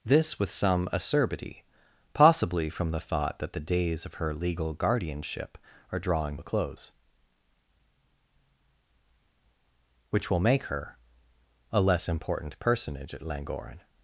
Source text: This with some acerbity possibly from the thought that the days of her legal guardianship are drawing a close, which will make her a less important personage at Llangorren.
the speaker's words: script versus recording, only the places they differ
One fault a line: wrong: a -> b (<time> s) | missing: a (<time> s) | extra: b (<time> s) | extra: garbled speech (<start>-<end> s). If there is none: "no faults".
no faults